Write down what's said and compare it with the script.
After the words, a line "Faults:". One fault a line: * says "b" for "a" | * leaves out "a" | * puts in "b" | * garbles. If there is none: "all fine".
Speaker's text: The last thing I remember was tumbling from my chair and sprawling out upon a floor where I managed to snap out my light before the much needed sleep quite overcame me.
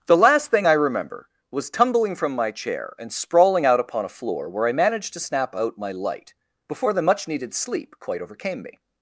The last thing I remember was tumbling from my chair and sprawling out upon a floor where I managed to snap out my light before the much needed sleep quite overcame me.
Faults:
all fine